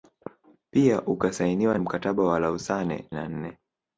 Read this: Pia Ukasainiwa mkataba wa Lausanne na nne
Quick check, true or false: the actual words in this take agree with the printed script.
true